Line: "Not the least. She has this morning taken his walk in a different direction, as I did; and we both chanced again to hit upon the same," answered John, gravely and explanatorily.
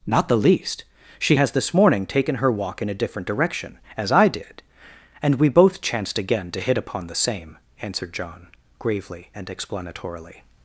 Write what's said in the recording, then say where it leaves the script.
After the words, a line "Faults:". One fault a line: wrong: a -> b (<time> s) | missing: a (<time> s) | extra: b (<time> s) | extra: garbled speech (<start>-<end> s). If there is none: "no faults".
"Not the least. She has this morning taken her walk in a different direction, as I did; and we both chanced again to hit upon the same," answered John, gravely and explanatorily.
Faults:
wrong: his -> her (2.4 s)